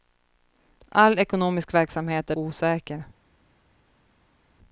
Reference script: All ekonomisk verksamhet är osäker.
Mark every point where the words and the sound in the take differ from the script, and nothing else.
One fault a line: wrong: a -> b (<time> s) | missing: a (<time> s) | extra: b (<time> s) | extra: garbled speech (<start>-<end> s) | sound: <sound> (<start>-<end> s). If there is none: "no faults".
no faults